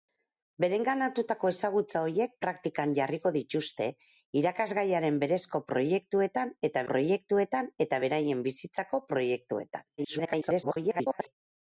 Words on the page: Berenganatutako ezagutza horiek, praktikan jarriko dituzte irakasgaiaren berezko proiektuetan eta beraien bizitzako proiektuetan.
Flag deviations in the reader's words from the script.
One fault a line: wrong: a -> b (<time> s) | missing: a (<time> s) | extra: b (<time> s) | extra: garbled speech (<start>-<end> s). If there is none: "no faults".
extra: proiektuetan eta (6.9 s)
extra: garbled speech (10.0-11.3 s)